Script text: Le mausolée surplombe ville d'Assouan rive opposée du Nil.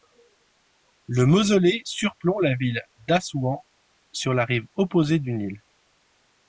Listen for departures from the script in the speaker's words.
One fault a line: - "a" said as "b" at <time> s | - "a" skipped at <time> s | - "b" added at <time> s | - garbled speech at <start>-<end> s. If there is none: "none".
- "la" added at 2.4 s
- "sur la" added at 4.1 s